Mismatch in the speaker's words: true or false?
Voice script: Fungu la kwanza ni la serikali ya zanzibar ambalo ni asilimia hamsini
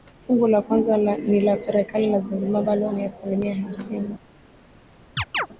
false